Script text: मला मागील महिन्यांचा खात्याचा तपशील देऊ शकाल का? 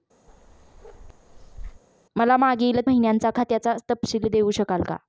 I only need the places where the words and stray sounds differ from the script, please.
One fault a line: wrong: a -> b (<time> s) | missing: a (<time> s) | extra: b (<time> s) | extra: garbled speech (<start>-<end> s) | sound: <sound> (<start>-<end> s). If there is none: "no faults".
sound: bark (0.3-1.8 s)